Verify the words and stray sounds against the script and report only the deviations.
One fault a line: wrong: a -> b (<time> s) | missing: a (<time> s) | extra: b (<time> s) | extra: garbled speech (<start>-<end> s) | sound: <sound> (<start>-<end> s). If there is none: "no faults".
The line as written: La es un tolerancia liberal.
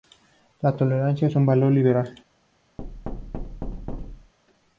extra: tolerancia (0.8 s)
wrong: tolerancia -> valor (1.5 s)
sound: thud (2.8-4.3 s)